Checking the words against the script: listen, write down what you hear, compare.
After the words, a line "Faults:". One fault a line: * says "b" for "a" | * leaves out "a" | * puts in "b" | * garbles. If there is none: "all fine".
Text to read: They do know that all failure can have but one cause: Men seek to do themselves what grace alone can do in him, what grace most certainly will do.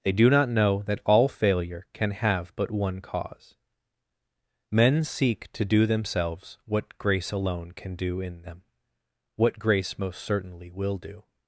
They do not know that all failure can have but one cause: Men seek to do themselves what grace alone can do in them, what grace most certainly will do.
Faults:
* puts in "not"
* says "them" for "him"